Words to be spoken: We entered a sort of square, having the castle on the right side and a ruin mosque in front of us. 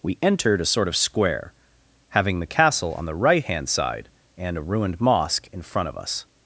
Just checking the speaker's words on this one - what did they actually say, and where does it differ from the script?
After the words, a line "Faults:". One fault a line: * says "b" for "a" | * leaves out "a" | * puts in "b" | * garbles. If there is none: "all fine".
We entered a sort of square, having the castle on the right hand side and a ruined mosque in front of us.
Faults:
* puts in "hand"
* says "ruined" for "ruin"